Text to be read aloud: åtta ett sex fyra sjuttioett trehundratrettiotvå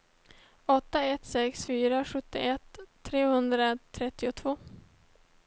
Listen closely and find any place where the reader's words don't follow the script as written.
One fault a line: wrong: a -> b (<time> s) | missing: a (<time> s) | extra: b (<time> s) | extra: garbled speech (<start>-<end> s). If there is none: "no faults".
no faults